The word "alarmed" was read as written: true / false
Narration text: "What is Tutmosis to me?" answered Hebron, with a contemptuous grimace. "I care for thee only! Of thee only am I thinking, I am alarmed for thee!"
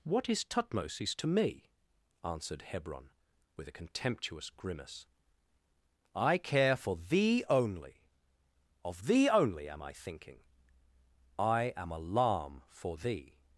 false